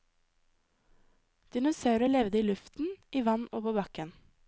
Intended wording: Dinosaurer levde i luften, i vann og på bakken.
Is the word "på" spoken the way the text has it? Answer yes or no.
yes